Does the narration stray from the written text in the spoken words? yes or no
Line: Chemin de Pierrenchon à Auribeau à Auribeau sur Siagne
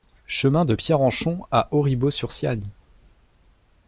yes